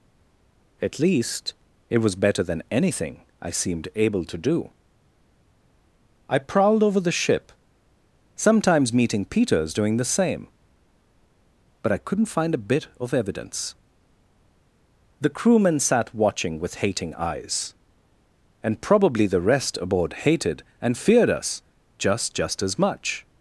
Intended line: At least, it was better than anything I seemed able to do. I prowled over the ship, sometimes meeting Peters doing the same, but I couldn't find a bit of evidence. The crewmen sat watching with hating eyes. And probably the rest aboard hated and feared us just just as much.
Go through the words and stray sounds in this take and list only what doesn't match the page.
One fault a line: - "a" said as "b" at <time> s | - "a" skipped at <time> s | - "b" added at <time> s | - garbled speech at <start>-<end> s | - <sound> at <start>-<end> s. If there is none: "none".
none